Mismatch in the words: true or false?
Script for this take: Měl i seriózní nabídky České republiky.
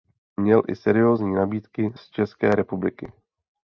true